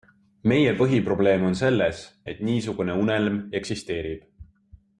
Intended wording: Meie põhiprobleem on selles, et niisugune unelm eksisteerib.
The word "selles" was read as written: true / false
true